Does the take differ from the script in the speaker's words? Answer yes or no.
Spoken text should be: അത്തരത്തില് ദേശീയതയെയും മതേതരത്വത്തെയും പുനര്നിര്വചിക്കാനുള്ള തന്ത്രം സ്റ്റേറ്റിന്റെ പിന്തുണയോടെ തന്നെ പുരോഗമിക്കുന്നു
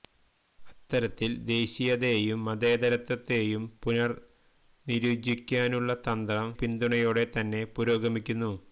yes